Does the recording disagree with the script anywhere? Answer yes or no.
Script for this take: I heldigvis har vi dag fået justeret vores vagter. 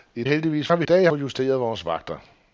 no